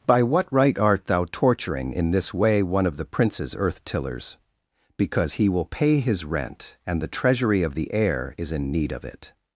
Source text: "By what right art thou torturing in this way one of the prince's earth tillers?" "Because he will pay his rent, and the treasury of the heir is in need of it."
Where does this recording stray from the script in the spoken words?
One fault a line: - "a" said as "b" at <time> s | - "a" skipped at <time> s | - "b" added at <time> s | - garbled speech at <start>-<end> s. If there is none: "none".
none